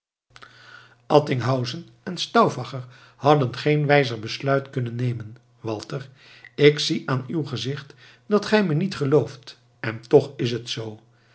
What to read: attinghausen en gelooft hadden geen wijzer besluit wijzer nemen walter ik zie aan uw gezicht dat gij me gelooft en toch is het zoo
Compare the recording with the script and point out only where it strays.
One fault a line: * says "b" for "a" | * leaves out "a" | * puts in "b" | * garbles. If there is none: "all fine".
* says "stauffacher" for "gelooft"
* says "kunnen" for "wijzer"
* puts in "niet"